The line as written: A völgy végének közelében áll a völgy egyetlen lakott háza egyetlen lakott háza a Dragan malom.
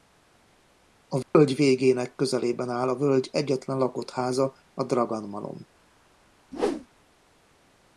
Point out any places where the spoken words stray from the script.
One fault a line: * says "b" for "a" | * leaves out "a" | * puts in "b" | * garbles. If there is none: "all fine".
* leaves out "egyetlen lakott háza"